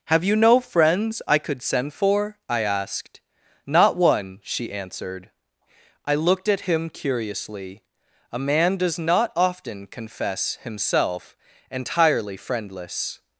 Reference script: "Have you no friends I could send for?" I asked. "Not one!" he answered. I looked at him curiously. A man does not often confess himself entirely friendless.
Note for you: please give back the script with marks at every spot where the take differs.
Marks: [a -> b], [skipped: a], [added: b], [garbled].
"Have you no friends I could send for?" I asked. "Not one!" [he -> she] answered. I looked at him curiously. A man does not often confess himself entirely friendless.